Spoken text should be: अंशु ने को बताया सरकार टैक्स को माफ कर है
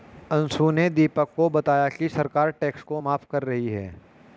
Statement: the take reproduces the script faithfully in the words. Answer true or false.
false